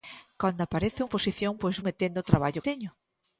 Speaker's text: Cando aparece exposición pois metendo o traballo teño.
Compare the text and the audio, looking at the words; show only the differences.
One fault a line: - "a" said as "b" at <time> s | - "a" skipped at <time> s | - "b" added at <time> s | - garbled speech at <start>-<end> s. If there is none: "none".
none